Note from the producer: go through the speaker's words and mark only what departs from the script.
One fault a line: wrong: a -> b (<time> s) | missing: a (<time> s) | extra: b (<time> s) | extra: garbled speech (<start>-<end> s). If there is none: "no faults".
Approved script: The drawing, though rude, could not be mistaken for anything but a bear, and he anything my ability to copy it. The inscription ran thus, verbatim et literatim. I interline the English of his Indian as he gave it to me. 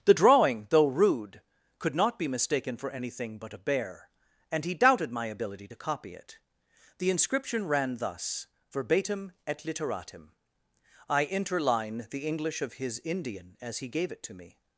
wrong: anything -> doubted (4.7 s)